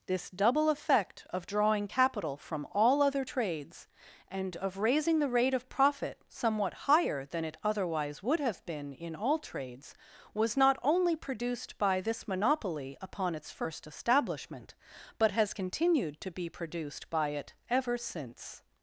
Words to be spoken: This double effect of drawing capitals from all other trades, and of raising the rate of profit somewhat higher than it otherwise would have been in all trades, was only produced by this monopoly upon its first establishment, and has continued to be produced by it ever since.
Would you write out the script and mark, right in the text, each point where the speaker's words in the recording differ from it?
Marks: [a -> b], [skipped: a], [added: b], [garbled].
This double effect of drawing [capitals -> capital] from all other trades, and of raising the rate of profit somewhat higher than it otherwise would have been in all trades, was [added: not] only produced by this monopoly upon its first establishment, [and -> but] has continued to be produced by it ever since.